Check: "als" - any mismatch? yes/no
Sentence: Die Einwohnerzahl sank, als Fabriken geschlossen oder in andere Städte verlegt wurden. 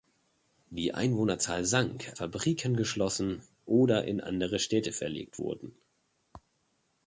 yes